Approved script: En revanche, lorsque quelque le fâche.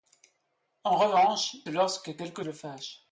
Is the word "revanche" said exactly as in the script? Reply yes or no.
yes